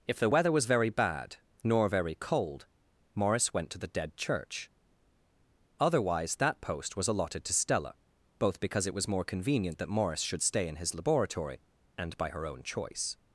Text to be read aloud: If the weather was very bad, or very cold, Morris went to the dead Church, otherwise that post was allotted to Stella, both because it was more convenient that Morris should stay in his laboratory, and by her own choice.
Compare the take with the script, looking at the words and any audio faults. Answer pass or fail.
fail